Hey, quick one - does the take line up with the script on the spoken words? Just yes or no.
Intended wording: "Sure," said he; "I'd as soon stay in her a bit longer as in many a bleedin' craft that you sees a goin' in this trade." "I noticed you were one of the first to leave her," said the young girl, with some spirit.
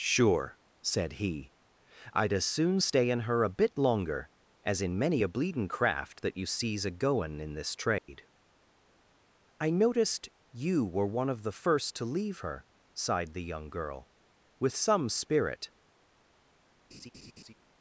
no